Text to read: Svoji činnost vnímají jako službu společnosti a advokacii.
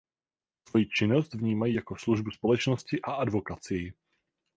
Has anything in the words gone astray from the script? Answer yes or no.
no